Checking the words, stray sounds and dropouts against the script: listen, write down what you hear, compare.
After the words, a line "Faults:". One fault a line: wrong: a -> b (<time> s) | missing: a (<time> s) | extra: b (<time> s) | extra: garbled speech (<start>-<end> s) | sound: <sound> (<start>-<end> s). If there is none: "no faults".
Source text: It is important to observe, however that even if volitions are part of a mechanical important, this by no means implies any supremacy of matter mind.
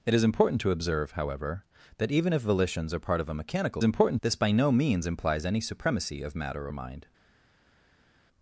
It is important to observe, however that even if volitions are part of a mechanical important, this by no means implies any supremacy of matter mind.
Faults:
no faults